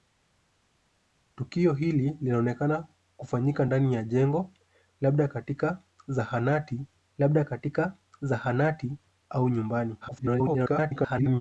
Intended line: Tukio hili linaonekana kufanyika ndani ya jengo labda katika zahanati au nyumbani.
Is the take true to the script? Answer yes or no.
no